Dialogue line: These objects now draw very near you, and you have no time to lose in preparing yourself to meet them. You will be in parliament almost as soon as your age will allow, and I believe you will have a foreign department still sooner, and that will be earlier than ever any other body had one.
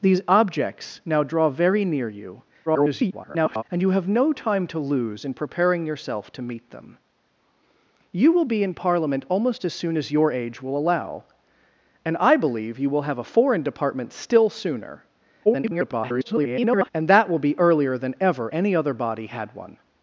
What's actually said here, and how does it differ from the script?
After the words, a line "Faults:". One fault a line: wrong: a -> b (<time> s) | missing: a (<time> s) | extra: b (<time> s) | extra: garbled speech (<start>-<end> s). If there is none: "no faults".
These objects now draw very near you, [garbled] and you have no time to lose in preparing yourself to meet them. You will be in parliament almost as soon as your age will allow, and I believe you will have a foreign department still sooner, [garbled] and that will be earlier than ever any other body had one.
Faults:
extra: garbled speech (2.7-3.6 s)
extra: garbled speech (15.4-16.9 s)